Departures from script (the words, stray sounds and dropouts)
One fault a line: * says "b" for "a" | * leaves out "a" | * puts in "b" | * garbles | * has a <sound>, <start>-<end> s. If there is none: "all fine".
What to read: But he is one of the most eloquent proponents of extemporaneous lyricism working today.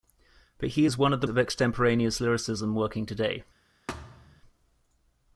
* leaves out "most eloquent proponents"
* has a thud, 3.9-4.4 s